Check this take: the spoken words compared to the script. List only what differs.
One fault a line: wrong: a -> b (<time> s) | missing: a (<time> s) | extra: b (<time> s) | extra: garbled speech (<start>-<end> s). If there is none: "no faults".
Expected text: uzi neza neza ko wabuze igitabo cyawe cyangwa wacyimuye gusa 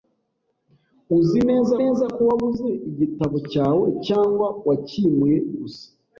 no faults